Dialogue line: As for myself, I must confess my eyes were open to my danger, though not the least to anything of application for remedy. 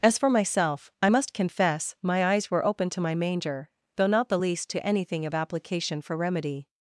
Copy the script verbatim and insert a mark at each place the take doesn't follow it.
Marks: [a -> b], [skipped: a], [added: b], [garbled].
As for myself, I must confess my eyes were open to my [danger, -> manger] though not the least to anything of application for remedy.